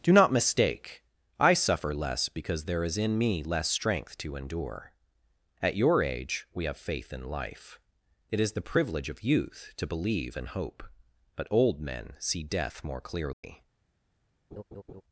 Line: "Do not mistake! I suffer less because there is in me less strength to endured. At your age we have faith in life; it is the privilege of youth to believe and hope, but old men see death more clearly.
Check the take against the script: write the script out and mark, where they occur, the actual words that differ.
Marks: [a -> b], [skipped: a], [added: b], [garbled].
"Do not mistake! I suffer less because there is in me less strength to [endured. -> endure] At your age we have faith in life; it is the privilege of youth to believe and hope, but old men see death more clearly.